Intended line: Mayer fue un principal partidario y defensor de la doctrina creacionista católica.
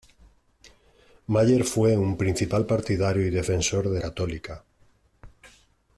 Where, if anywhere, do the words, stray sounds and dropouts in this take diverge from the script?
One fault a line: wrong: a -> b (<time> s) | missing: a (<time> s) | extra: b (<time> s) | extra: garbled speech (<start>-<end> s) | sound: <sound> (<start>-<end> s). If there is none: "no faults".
missing: la doctrina creacionista (4.0 s)